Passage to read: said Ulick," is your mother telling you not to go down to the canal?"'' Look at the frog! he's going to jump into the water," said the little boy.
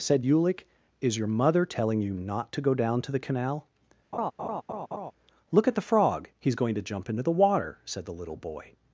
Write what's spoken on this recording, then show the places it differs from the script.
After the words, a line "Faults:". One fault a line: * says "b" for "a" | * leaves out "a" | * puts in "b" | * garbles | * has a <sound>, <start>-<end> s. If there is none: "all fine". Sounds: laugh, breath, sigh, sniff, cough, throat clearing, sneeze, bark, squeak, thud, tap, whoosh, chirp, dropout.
said Ulick," is your mother telling you not to go down to the canal?"'' Look at the frog! he's going to jump into the water," said the little boy.
Faults:
* has a laugh, 4.1-5.1 s